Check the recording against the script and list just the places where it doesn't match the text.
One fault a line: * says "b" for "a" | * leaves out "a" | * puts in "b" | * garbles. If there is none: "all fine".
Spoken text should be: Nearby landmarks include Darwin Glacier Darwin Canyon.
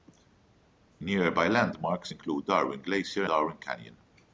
all fine